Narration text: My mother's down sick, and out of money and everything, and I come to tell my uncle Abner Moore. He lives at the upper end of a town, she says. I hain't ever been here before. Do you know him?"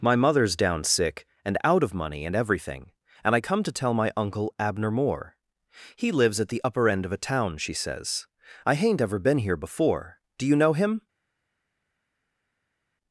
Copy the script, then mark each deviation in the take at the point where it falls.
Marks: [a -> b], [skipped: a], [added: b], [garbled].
My mother's down sick, and out of money and everything, and I come to tell my uncle Abner Moore. He lives at the upper end of a town, she says. I hain't ever been here before. Do you know him?"